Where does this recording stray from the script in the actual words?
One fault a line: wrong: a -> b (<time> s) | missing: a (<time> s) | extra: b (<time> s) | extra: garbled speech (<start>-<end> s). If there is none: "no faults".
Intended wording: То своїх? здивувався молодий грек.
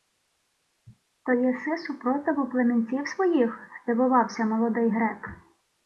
extra: єси супротиву племінців (1.3 s)